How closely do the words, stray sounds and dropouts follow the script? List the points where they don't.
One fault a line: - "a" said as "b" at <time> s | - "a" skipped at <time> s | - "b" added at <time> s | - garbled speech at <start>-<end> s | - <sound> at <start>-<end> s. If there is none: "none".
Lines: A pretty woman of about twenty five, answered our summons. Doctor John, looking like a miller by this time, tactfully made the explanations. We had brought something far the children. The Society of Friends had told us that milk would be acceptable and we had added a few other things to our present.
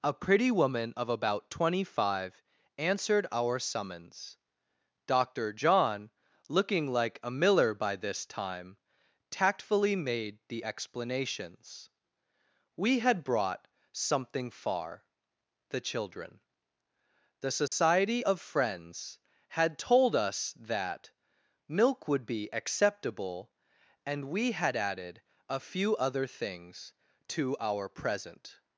- dropout at 17.7-17.7 s